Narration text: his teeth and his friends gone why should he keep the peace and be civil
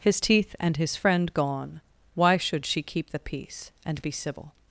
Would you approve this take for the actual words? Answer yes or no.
no